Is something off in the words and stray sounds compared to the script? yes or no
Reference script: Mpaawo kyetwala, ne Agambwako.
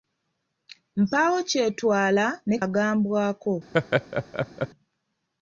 yes